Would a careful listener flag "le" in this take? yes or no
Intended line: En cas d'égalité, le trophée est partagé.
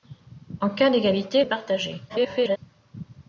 yes